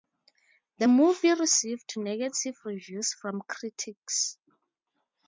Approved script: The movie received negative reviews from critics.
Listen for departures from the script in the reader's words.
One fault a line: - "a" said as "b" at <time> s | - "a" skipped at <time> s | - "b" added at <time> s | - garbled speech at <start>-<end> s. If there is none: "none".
none